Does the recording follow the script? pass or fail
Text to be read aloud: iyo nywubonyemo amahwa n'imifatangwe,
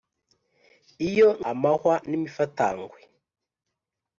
fail